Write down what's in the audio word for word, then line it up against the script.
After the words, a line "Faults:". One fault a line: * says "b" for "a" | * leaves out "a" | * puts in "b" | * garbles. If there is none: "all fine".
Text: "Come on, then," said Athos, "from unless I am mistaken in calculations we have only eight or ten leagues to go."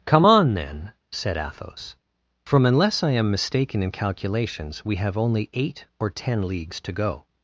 "Come on, then," said Athos, "from unless I am mistaken in calculations we have only eight or ten leagues to go."
Faults:
all fine